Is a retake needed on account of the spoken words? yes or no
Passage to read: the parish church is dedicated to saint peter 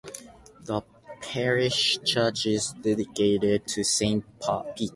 no